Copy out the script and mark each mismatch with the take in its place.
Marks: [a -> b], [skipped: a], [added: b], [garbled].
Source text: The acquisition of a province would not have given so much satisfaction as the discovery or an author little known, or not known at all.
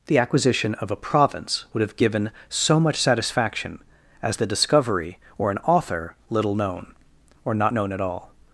The acquisition of a province would [skipped: not] have given so much satisfaction as the discovery or an author little known, or not known at all.